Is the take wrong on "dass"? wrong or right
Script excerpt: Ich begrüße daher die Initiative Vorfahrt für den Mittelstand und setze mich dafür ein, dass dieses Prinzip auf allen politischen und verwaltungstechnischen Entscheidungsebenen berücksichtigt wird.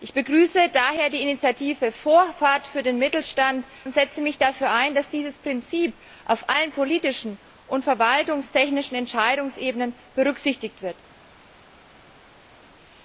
right